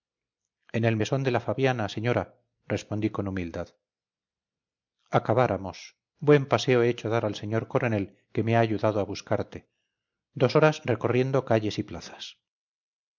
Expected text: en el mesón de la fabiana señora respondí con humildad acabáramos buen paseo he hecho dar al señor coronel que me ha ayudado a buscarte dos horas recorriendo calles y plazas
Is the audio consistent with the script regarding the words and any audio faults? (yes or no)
yes